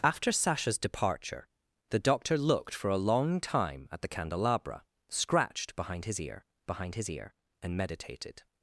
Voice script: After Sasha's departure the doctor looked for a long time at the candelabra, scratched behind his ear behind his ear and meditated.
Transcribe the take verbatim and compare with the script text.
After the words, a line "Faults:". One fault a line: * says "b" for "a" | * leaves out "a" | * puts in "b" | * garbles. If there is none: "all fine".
After Sasha's departure the doctor looked for a long time at the candelabra, scratched behind his ear behind his ear and meditated.
Faults:
all fine